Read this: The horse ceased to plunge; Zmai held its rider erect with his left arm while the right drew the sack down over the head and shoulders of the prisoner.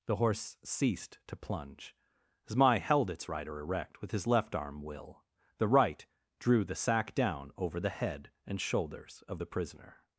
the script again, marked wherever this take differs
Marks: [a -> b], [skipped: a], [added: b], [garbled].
The horse ceased to plunge; Zmai held its rider erect with his left arm [while -> will] the right drew the sack down over the head and shoulders of the prisoner.